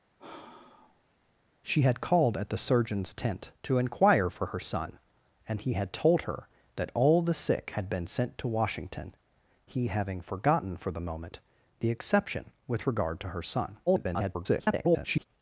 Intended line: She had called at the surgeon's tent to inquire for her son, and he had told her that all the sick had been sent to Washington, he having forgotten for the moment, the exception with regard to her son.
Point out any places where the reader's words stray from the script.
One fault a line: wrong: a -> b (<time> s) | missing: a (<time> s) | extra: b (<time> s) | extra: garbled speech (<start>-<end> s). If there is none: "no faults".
extra: garbled speech (13.9-15.3 s)